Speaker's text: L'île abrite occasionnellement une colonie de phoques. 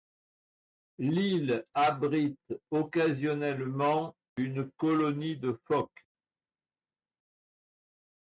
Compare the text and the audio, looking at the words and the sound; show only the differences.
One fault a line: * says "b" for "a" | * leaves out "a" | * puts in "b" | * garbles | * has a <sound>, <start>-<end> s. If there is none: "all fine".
all fine